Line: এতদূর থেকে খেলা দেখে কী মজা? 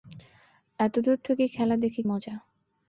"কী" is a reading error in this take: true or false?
true